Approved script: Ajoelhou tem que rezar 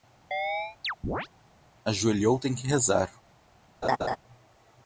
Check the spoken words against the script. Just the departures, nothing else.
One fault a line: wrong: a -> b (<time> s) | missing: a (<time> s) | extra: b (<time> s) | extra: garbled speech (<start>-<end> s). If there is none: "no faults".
no faults